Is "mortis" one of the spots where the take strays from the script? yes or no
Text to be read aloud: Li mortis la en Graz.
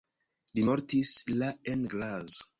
no